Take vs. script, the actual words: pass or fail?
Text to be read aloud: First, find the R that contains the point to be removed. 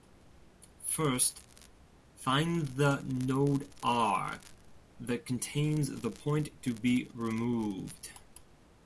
fail